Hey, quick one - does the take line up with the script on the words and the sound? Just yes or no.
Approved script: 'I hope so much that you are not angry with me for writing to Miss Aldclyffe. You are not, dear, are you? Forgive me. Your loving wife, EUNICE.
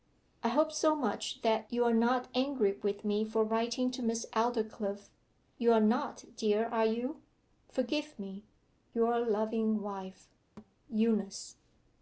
no